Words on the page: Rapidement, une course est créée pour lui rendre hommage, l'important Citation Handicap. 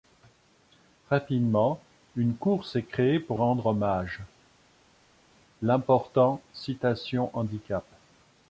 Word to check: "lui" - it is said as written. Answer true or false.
false